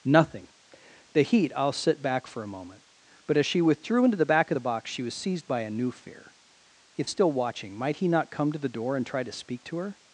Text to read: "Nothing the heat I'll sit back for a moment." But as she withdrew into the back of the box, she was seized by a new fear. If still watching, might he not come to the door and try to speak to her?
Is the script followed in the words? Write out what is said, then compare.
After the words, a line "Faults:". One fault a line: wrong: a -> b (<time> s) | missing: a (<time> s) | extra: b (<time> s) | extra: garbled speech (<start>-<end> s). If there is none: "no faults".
"Nothing the heat I'll sit back for a moment." But as she withdrew into the back of the box, she was seized by a new fear. If still watching, might he not come to the door and try to speak to her?
Faults:
no faults